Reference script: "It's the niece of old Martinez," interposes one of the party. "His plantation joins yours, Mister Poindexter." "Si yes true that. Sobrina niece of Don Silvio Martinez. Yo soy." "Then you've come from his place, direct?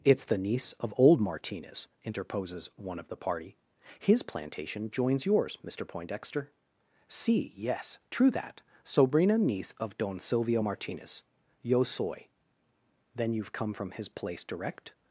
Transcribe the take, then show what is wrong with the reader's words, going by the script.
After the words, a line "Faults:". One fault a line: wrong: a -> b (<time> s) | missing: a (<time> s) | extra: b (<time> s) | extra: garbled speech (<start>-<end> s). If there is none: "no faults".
"It's the niece of old Martinez," interposes one of the party. "His plantation joins yours, Mister Poindexter." "Si yes true that. Sobrina niece of Don Silvio Martinez. Yo soy." "Then you've come from his place, direct?
Faults:
no faults